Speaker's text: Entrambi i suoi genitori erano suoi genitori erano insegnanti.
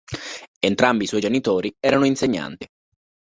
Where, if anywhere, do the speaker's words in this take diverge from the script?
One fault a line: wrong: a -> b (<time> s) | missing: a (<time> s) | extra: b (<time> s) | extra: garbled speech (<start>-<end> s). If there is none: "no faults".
missing: suoi genitori erano (2.0 s)